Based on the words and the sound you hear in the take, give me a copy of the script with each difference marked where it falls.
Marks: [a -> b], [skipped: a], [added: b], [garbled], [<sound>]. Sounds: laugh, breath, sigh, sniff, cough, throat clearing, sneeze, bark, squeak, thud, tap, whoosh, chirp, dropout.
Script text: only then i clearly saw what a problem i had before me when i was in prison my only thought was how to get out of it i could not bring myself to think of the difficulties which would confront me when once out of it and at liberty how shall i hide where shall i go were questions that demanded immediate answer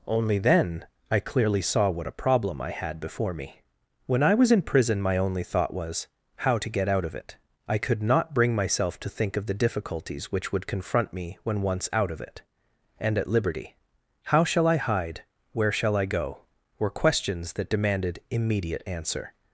only then i clearly saw what a problem i had before me when i was in prison my only thought was how to get out of it i could not bring myself to think of the difficulties which would confront me when once out of it and at liberty how shall i hide where shall i go were questions that demanded immediate answer